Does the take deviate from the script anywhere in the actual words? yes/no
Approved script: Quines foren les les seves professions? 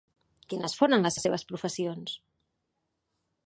no